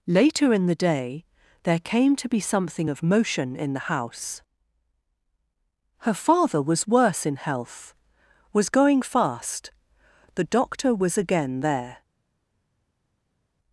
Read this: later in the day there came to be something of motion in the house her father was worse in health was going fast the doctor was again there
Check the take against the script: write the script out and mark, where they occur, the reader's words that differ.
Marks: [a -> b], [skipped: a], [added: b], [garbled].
later in the day there came to be something of motion in the house her father was worse in health was going fast the doctor was again there